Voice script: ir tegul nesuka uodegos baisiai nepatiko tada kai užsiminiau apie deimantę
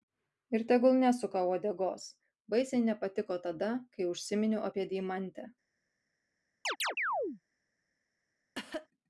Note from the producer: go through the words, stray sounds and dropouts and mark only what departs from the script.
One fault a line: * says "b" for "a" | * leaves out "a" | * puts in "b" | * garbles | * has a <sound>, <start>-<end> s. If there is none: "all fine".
* has a chirp, 6.6-7.4 s
* has a cough, 8.5-8.9 s